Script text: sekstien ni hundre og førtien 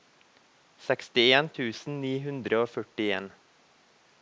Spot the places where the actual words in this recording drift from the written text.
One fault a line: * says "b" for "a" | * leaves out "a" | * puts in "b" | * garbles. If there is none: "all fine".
* puts in "tusen"